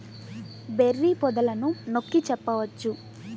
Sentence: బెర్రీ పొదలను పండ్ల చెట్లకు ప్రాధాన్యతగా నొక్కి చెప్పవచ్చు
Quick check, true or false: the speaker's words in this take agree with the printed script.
false